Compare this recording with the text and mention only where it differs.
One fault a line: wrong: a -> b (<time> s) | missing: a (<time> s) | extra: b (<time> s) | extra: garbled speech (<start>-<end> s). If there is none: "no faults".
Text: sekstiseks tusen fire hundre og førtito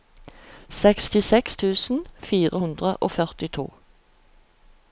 no faults